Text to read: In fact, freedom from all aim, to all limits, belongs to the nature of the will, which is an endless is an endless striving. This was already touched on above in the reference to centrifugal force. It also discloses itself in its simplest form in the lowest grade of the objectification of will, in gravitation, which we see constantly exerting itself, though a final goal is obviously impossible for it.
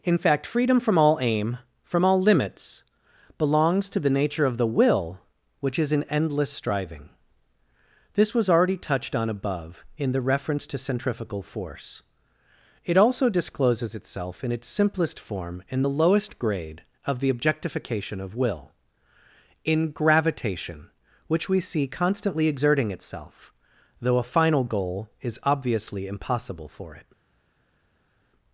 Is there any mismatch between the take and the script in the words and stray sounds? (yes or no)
yes